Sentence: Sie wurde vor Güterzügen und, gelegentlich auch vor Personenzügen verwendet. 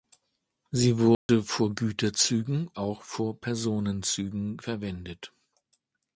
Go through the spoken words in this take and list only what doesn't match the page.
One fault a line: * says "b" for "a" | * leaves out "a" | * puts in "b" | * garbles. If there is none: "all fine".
* leaves out "und gelegentlich"